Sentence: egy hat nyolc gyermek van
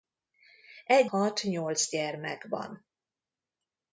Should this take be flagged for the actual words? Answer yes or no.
no